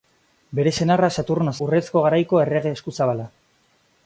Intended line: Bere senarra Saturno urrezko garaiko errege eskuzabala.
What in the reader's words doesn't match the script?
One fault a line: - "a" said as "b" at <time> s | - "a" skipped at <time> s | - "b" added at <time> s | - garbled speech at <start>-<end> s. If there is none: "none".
none